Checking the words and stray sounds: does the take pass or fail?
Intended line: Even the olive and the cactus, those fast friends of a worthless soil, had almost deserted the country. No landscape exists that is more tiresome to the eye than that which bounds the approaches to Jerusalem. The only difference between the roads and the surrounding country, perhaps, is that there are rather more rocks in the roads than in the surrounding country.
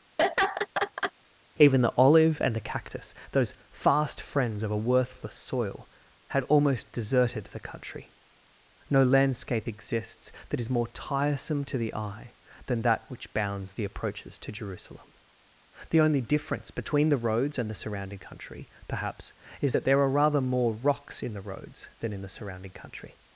fail